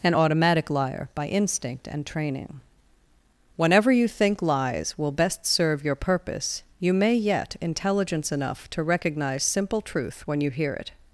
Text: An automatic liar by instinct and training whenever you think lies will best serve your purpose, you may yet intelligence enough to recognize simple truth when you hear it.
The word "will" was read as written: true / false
true